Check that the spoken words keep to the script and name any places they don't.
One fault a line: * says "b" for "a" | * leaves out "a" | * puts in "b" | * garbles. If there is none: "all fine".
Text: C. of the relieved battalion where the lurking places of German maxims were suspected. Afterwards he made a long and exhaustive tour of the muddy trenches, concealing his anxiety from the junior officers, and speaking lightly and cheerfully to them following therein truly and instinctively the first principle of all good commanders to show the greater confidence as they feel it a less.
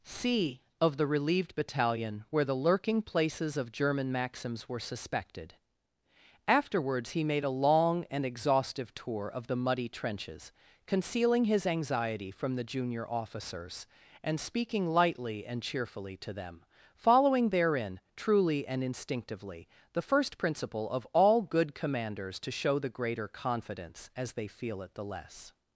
* says "the" for "a"